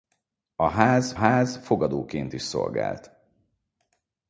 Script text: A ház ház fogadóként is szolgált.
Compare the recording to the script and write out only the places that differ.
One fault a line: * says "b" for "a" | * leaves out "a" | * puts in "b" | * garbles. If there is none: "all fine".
all fine